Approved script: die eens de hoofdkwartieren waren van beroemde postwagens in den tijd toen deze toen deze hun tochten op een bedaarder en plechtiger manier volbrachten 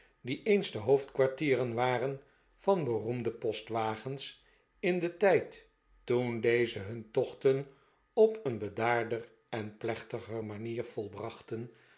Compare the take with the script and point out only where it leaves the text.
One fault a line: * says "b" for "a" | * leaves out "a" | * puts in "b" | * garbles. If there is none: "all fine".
* leaves out "toen deze"